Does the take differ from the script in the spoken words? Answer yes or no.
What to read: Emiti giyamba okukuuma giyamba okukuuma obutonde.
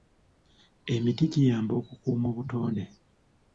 yes